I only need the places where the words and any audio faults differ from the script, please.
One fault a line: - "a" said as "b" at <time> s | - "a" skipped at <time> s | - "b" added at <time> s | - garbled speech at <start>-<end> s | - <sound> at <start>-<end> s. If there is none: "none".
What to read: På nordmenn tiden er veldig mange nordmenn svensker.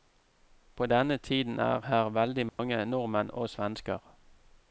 - "nordmenn" said as "denne" at 0.8 s
- "her" added at 1.9 s
- dropout at 2.5-2.6 s
- "og" added at 3.3 s